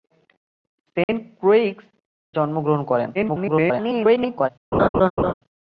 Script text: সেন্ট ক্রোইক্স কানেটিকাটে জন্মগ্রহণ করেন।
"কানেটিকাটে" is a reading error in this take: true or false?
true